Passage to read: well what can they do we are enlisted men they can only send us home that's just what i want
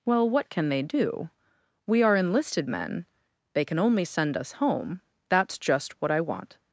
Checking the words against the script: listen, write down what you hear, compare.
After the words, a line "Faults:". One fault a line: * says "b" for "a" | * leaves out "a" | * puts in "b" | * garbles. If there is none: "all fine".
well what can they do we are enlisted men they can only send us home that's just what i want
Faults:
all fine